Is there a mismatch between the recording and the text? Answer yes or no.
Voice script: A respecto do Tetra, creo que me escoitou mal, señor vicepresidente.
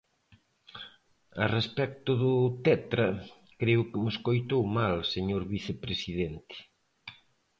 no